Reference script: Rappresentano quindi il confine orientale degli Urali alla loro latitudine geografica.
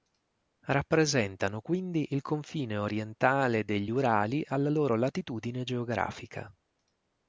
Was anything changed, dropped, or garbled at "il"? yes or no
no